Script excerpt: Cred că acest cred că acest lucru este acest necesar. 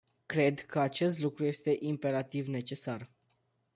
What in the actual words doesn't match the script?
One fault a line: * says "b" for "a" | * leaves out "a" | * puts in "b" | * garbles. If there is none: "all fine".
* leaves out "cred că acest"
* says "imperativ" for "acest"